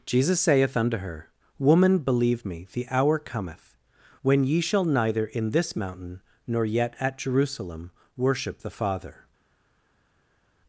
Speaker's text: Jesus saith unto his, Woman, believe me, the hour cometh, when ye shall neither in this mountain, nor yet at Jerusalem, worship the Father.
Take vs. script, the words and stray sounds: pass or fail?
fail